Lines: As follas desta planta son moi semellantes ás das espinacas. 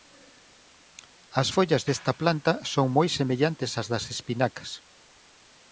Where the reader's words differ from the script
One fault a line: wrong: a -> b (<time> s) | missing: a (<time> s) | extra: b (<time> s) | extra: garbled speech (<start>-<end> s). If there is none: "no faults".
no faults